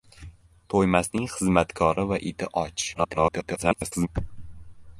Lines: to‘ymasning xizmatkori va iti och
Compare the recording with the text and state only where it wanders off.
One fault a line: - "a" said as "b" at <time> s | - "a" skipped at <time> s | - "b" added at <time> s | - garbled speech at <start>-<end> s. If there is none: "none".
- garbled speech at 2.9-4.1 s